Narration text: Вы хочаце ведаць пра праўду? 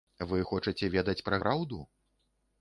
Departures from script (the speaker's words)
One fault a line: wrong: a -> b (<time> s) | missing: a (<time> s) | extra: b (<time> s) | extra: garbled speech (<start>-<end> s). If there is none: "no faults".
no faults